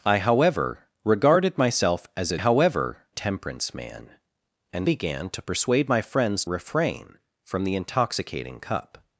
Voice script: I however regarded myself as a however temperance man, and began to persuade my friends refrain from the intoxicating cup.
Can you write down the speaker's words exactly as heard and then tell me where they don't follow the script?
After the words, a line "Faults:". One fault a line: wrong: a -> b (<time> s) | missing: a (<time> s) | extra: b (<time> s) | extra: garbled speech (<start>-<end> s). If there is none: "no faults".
I however regarded myself as a however temperance man, and began to persuade my friends refrain from the intoxicating cup.
Faults:
no faults